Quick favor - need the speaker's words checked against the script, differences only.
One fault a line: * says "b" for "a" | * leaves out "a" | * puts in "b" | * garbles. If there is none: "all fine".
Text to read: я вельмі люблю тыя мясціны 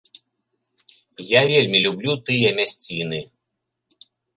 all fine